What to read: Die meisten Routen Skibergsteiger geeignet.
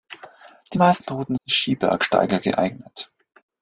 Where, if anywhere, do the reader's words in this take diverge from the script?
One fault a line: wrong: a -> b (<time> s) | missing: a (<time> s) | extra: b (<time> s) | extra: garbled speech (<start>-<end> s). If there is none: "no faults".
no faults